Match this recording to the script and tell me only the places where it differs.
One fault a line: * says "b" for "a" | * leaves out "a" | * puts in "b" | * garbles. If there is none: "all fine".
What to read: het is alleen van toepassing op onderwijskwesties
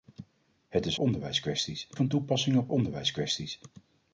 * says "onderwijskwesties" for "alleen"